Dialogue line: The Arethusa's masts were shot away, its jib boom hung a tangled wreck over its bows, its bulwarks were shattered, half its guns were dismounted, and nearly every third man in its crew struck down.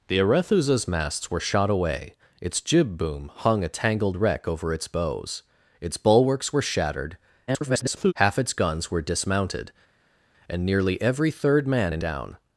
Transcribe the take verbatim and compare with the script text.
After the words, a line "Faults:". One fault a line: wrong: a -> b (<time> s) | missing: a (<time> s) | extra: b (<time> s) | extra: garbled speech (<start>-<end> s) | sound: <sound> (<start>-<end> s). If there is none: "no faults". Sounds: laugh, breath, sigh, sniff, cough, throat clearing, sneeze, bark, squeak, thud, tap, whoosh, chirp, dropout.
The Arethusa's masts were shot away, its jib boom hung a tangled wreck over its bows, its bulwarks were shattered, [garbled] half its guns were dismounted, and nearly every third man in down.
Faults:
extra: garbled speech (7.5-8.1 s)
missing: its crew struck (12.0 s)